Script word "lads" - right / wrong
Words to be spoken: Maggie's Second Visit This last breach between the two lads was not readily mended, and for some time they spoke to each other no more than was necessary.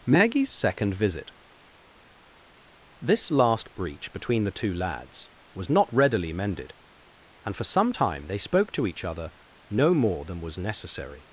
right